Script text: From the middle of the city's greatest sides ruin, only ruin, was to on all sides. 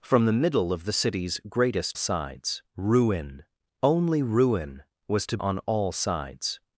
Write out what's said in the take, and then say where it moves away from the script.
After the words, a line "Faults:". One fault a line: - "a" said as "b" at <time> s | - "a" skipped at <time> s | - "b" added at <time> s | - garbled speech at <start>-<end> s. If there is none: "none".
From the middle of the city's greatest sides ruin, only ruin, was to on all sides.
Faults:
none